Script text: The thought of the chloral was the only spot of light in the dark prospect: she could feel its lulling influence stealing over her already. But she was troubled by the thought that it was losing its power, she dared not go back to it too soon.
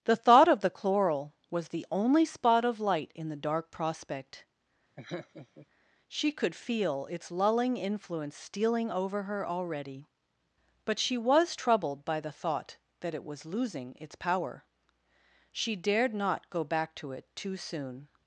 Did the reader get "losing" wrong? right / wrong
right